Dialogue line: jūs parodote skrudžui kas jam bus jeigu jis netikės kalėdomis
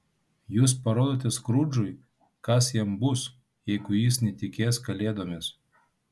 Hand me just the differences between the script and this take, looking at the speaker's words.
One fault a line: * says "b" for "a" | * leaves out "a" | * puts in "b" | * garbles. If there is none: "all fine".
all fine